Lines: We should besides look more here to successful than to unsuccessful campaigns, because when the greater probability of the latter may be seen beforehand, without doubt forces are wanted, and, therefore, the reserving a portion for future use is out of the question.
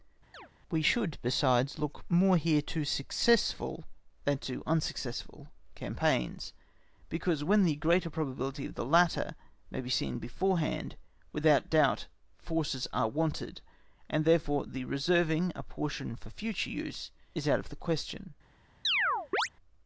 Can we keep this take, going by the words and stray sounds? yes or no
no